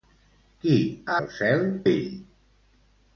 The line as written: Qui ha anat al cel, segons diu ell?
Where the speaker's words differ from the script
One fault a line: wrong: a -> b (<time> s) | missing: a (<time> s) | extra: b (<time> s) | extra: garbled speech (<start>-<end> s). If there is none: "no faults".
missing: anat (1.2 s)
missing: segons diu (1.6 s)